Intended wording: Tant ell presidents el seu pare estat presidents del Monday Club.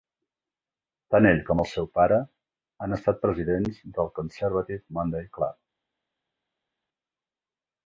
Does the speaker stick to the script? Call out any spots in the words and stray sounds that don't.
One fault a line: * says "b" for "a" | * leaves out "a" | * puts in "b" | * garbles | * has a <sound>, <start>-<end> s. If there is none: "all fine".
* says "com" for "presidents"
* puts in "han"
* puts in "Conservative"